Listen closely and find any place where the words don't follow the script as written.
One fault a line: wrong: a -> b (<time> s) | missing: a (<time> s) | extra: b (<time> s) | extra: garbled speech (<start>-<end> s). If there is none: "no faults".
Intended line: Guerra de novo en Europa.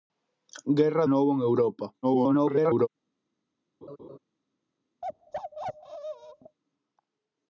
missing: de (1.1 s)
extra: garbled speech (2.0-2.9 s)